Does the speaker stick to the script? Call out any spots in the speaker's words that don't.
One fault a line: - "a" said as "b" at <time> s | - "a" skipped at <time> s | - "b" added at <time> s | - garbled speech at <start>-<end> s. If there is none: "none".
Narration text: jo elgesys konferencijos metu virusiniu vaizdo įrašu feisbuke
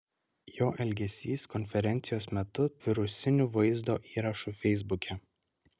none